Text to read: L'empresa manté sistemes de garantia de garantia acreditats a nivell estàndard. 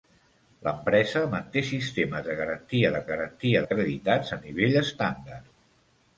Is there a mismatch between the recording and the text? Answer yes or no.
no